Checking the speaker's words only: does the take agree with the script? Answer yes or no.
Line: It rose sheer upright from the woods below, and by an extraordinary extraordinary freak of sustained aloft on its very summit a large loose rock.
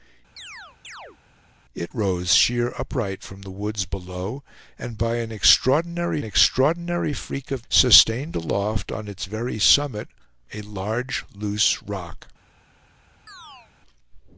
yes